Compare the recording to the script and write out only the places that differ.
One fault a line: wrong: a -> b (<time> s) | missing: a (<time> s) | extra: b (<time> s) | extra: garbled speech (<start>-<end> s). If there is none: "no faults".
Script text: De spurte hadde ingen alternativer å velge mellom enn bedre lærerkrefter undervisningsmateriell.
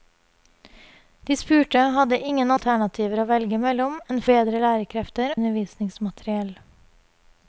no faults